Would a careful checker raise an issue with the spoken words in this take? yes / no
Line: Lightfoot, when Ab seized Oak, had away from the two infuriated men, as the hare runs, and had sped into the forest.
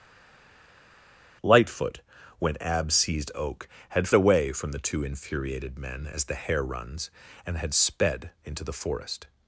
no